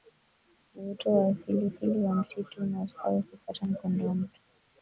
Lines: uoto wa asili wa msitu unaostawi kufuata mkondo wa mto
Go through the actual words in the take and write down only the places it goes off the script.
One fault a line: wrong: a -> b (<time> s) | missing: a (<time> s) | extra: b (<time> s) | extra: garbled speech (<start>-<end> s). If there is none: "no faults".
extra: asili (1.7 s)